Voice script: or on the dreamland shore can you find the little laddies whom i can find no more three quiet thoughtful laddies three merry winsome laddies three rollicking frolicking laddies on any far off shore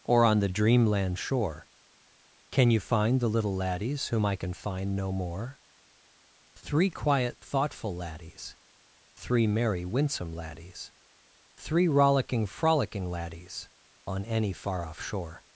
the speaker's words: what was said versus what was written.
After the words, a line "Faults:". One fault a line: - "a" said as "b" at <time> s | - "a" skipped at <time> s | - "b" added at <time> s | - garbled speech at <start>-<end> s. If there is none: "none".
or on the dreamland shore can you find the little laddies whom i can find no more three quiet thoughtful laddies three merry winsome laddies three rollicking frolicking laddies on any far off shore
Faults:
none